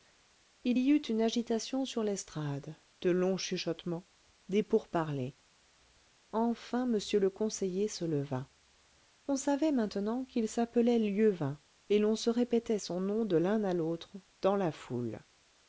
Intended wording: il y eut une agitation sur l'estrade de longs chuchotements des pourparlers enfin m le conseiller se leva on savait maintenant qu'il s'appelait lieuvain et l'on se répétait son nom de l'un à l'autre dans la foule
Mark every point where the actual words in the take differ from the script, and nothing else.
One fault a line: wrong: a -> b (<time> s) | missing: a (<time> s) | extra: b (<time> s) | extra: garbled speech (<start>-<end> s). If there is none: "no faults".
no faults